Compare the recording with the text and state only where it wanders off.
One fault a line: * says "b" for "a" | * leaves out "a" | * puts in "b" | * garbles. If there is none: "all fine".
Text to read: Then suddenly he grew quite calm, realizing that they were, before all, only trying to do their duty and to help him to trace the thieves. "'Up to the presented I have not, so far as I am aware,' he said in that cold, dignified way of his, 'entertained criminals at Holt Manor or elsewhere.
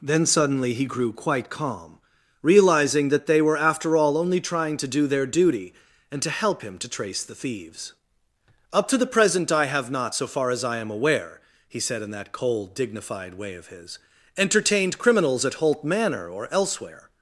* says "after" for "before"
* says "present" for "presented"